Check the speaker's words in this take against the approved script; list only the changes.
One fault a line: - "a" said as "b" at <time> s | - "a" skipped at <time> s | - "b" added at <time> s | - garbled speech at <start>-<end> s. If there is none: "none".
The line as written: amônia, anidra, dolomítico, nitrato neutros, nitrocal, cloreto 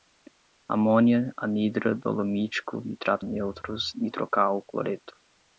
none